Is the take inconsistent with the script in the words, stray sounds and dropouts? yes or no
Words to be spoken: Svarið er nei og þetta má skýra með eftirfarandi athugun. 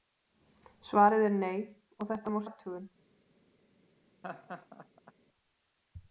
yes